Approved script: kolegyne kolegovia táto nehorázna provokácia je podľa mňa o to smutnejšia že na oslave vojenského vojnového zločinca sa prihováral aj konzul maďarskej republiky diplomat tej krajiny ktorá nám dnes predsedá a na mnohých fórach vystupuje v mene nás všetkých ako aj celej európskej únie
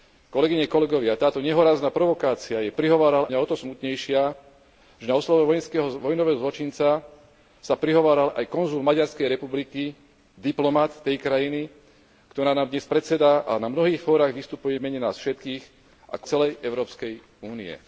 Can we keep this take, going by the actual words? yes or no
no